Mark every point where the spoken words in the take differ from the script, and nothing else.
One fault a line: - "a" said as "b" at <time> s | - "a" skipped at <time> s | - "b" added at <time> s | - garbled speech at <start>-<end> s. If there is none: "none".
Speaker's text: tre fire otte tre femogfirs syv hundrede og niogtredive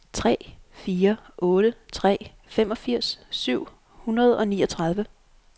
none